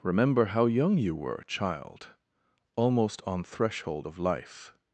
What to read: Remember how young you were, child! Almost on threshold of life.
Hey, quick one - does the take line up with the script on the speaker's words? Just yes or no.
yes